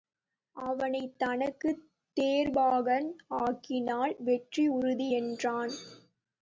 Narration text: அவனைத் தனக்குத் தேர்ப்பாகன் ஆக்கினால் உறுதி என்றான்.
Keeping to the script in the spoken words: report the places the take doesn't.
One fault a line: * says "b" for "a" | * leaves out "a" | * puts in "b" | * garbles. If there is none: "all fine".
* puts in "வெற்றி"